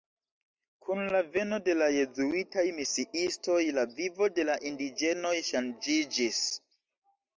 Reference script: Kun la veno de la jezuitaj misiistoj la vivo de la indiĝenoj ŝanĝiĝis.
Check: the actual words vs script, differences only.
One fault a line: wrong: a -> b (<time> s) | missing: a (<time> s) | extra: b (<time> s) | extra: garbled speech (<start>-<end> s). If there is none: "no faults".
no faults